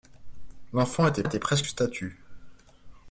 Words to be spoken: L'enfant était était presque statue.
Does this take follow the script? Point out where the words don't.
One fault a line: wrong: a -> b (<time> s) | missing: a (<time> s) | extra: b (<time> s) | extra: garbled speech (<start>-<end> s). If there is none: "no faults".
no faults